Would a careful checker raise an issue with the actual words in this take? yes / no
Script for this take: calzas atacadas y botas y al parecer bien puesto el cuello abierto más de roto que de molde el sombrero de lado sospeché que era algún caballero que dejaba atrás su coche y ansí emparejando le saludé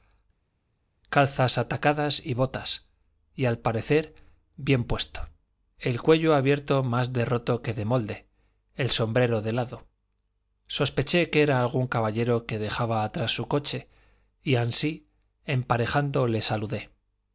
no